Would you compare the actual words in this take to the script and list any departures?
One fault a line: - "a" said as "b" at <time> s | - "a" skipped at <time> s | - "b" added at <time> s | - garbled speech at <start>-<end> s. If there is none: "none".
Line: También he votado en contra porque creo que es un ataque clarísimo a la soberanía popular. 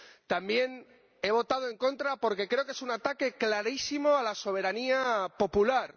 none